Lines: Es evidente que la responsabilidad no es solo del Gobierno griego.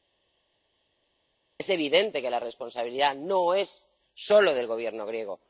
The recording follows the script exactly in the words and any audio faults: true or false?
true